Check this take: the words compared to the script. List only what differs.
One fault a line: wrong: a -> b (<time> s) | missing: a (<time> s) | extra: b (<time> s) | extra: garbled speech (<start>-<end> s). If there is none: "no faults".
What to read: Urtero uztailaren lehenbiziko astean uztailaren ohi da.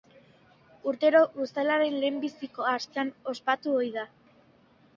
wrong: uztailaren -> ospatu (3.4 s)